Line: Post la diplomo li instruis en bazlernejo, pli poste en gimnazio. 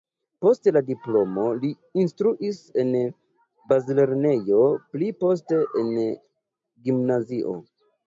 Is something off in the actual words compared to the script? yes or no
no